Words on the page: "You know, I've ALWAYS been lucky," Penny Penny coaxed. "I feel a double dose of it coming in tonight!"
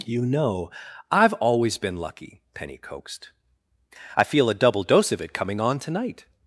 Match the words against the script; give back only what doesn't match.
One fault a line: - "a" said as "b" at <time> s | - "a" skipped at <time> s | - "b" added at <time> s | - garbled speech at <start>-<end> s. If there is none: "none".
- "Penny" skipped at 2.8 s
- "in" said as "on" at 5.6 s